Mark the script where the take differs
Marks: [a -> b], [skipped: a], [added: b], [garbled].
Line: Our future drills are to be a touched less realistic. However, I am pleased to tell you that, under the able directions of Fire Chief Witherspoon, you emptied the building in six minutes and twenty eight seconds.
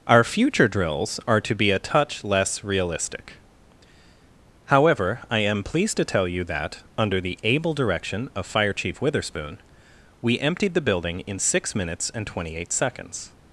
Our future drills are to be a [touched -> touch] less realistic. However, I am pleased to tell you that, under the able [directions -> direction] of Fire Chief Witherspoon, [you -> we] emptied the building in six minutes and twenty eight seconds.